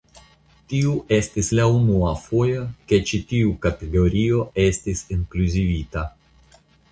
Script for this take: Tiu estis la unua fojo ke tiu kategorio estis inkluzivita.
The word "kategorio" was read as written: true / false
true